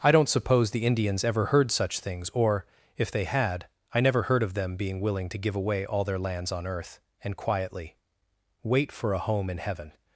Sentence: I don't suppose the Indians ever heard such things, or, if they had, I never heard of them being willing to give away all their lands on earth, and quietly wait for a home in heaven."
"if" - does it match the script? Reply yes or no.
yes